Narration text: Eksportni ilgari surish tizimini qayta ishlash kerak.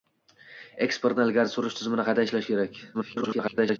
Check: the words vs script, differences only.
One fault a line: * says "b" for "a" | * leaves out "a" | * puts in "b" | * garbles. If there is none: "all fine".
* garbles